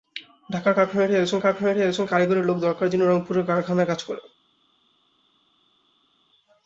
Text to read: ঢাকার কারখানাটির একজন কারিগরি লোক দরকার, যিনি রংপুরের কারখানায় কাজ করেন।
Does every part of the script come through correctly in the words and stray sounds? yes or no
no